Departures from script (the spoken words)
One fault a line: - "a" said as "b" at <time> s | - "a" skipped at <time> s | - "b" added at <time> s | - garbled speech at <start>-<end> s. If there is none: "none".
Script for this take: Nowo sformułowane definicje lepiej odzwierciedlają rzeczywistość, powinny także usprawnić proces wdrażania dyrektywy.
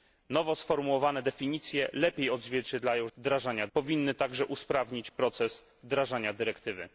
- "rzeczywistość" said as "wdrażania" at 3.2 s